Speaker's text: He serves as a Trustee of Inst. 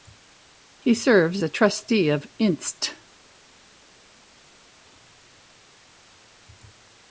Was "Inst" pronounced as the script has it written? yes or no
yes